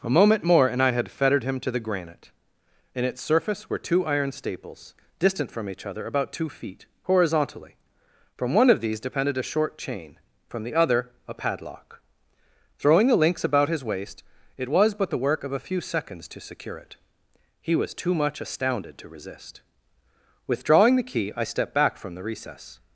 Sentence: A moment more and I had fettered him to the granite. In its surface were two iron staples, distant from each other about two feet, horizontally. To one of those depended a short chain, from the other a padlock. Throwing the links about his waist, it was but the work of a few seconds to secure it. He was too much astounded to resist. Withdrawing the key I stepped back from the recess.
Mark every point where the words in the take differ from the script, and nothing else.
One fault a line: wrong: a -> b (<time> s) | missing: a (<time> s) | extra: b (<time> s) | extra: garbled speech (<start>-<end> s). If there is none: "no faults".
wrong: To -> From (8.3 s)
wrong: those -> these (8.8 s)